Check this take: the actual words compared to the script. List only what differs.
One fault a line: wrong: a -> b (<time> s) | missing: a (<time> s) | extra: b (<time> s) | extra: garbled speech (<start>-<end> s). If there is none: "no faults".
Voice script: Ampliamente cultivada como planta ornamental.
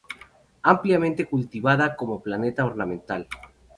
no faults